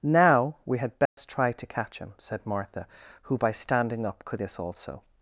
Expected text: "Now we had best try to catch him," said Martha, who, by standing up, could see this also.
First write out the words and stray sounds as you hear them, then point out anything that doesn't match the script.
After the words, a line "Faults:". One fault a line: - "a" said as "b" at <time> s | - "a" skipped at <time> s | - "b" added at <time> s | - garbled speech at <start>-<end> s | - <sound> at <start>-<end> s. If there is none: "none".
"Now we had best try to catch him," said Martha, who, by standing up, could this also.
Faults:
- dropout at 1.1-1.2 s
- "see" skipped at 4.4 s